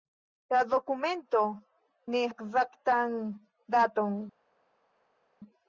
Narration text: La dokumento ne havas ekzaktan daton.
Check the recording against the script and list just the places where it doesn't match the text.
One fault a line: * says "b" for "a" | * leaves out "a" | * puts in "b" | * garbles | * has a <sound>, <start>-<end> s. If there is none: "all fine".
* leaves out "havas"